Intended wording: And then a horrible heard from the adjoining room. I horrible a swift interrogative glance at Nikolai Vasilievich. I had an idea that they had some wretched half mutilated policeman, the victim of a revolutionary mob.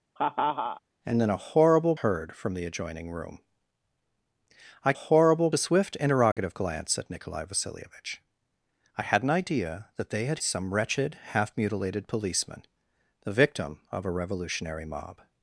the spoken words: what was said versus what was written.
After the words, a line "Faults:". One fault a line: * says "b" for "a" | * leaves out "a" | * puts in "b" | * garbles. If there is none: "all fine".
And then a horrible heard from the adjoining room. I horrible a swift interrogative glance at Nikolai Vasilievich. I had an idea that they had some wretched half mutilated policeman, the victim of a revolutionary mob.
Faults:
all fine